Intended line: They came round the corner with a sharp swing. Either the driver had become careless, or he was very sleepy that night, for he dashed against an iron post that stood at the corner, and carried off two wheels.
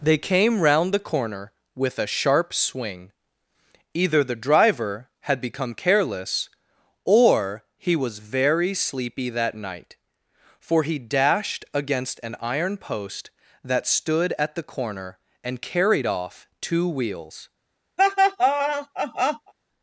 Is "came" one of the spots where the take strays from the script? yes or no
no